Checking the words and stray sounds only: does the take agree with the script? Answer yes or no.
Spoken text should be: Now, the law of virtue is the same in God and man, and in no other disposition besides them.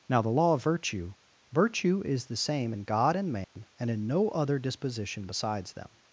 no